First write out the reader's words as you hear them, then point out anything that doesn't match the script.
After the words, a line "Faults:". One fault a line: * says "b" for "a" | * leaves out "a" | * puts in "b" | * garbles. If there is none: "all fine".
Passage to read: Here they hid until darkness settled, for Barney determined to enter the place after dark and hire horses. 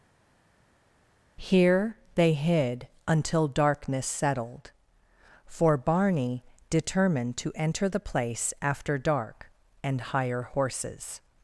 Here they hid until darkness settled, for Barney determined to enter the place after dark and hire horses.
Faults:
all fine